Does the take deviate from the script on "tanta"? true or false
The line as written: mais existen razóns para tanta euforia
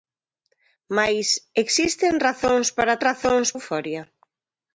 true